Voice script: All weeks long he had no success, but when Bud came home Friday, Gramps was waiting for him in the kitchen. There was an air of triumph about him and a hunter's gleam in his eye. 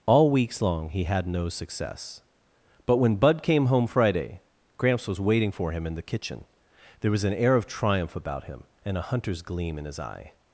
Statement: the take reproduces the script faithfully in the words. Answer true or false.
true